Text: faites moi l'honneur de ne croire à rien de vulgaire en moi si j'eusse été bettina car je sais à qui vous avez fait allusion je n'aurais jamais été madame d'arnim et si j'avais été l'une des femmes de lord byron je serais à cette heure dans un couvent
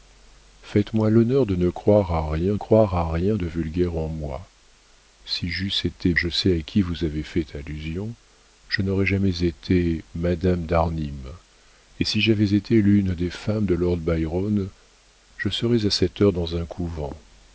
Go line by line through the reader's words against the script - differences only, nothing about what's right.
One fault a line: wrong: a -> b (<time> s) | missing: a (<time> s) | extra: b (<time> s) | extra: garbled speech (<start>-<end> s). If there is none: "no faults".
extra: croire à rien (2.5 s)
missing: bettina car (6.1 s)